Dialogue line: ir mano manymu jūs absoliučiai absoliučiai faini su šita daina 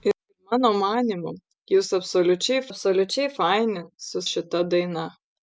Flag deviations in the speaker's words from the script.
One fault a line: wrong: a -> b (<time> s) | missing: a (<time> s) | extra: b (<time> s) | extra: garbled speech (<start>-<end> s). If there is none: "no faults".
no faults